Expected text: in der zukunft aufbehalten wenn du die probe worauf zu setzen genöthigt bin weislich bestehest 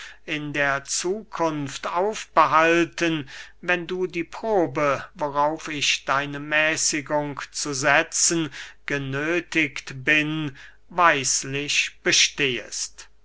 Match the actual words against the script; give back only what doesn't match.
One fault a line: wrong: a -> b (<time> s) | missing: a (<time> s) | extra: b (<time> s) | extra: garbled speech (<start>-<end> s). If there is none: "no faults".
extra: ich deine mäßigung (5.7 s)